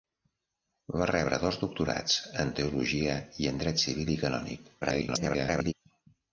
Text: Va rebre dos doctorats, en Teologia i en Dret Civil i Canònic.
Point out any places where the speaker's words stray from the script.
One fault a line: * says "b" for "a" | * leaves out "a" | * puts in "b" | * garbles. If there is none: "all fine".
* garbles